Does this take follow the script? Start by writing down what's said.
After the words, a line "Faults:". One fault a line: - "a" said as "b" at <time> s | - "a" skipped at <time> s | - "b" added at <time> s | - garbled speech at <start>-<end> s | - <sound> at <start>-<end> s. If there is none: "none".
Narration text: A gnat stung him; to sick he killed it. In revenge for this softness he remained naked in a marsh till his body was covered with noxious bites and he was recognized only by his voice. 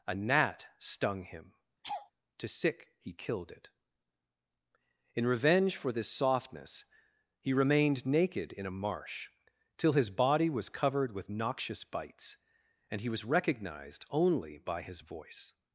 A gnat stung him; to sick he killed it. In revenge for this softness he remained naked in a marsh till his body was covered with noxious bites and he was recognized only by his voice.
Faults:
- laugh at 1.8-2.1 s